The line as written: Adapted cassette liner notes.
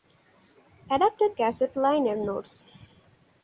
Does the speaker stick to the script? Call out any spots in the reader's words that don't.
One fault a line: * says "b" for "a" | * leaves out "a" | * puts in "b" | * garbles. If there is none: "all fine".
all fine